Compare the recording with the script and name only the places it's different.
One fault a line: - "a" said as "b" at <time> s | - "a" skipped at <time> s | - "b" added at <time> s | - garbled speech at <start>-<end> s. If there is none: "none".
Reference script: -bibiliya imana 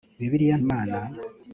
none